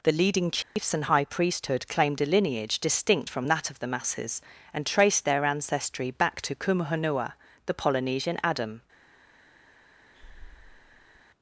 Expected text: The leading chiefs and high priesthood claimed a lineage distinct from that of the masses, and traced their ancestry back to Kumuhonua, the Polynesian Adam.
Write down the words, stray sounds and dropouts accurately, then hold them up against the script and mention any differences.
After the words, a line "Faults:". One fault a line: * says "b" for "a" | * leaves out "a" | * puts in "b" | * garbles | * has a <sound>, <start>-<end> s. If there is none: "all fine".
The leading chiefs and high priesthood claimed a lineage distinct from that of the masses, and traced their ancestry back to Kumuhonua, the Polynesian Adam.
Faults:
* has a dropout, 0.6-0.8 s
* has a breath, 10.1-11.2 s